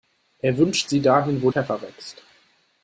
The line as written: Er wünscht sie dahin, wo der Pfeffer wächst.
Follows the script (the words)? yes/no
no